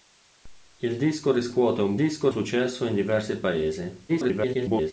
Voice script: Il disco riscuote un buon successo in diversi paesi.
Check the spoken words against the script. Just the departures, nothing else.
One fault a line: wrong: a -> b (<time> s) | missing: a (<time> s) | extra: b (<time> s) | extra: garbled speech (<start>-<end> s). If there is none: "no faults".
wrong: buon -> disco (1.9 s)
extra: garbled speech (4.1-4.9 s)